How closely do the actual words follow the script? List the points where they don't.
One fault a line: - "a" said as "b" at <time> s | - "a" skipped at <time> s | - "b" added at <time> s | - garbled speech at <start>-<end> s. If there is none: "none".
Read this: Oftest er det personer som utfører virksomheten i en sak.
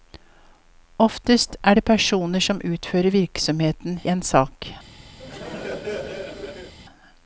- "i" skipped at 4.0 s